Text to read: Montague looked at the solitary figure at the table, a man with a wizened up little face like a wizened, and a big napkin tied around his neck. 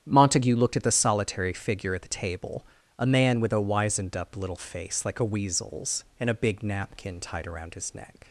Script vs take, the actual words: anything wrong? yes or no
yes